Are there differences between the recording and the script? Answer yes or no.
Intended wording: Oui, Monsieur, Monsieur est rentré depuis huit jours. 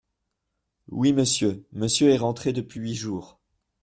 no